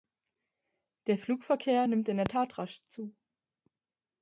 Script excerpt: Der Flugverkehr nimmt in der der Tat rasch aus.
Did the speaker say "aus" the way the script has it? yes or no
no